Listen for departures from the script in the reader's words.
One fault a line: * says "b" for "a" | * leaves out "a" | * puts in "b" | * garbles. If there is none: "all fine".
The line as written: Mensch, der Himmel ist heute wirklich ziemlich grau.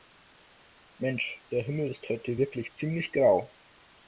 all fine